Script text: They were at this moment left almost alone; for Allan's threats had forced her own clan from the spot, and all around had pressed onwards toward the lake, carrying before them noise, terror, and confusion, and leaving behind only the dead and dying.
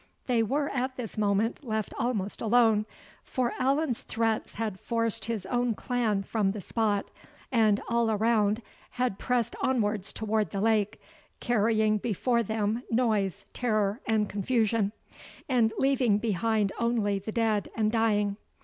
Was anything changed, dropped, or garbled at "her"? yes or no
yes